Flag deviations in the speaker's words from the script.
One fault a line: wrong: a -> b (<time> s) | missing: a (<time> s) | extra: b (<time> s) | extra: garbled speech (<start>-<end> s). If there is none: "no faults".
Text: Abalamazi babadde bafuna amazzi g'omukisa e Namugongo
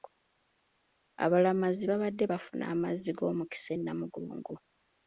no faults